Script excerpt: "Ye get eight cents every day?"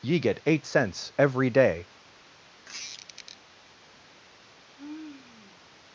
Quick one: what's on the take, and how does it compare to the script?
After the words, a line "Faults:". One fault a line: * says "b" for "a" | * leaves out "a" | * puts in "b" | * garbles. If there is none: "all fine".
"Ye get eight cents every day?"
Faults:
all fine